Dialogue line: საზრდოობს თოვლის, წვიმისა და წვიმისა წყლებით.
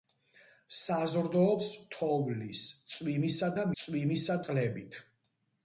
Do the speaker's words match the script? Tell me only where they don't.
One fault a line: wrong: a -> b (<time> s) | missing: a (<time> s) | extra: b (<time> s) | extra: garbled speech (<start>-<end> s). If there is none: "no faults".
no faults